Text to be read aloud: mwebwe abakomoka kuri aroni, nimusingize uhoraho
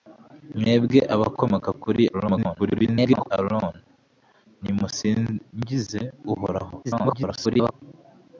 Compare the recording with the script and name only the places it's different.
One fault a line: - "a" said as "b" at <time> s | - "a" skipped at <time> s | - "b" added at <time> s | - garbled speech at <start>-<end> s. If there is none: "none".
- garbled speech at 2.1-3.3 s
- garbled speech at 6.8-7.7 s